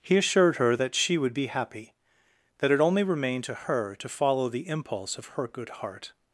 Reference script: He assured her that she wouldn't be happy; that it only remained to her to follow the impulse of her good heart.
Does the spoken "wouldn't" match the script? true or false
false